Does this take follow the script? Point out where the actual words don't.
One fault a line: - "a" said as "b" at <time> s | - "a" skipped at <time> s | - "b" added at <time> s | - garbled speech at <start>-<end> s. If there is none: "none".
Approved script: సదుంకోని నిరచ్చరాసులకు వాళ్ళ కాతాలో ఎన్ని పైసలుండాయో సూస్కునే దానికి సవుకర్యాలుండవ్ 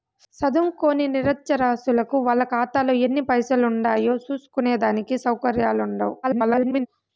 - garbled speech at 6.2-6.9 s